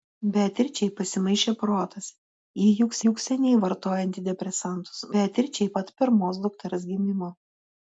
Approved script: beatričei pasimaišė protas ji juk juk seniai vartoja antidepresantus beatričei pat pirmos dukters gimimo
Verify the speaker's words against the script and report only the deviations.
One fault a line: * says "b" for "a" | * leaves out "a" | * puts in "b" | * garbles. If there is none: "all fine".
all fine